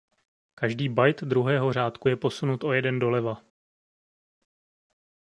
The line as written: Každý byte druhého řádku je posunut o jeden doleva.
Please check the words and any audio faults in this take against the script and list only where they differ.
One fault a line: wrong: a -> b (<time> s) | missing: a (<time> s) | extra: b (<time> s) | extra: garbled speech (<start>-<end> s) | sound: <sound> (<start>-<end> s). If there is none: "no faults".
no faults